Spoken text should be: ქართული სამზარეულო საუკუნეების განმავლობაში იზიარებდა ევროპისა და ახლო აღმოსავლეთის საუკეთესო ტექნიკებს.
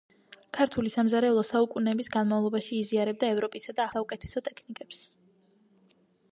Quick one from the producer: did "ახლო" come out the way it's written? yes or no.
no